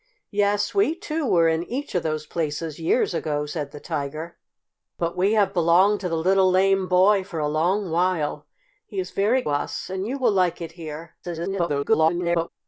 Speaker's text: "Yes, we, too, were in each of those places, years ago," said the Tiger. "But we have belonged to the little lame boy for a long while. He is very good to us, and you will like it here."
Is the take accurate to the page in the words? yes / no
no